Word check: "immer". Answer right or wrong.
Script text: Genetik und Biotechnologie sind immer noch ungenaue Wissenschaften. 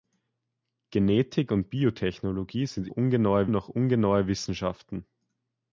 wrong